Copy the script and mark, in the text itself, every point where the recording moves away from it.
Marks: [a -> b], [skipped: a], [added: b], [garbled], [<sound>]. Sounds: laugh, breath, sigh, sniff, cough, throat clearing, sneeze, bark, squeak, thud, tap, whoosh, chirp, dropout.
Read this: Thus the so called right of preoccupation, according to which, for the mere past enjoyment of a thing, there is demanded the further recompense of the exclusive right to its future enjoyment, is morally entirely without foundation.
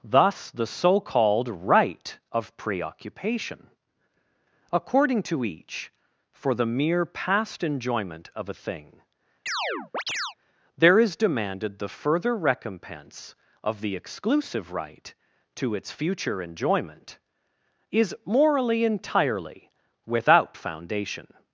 Thus the so called right of preoccupation, according to [which, -> each] for the mere past enjoyment of a thing, [chirp] there is demanded the further recompense of the exclusive right to its future enjoyment, is morally entirely without foundation.